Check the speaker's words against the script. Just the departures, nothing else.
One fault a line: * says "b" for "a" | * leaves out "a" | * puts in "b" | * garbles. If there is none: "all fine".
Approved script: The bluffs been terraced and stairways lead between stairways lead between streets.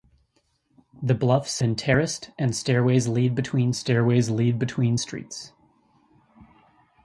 all fine